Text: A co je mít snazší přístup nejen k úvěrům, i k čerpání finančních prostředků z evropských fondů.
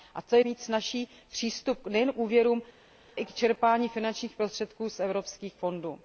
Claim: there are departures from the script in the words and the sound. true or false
false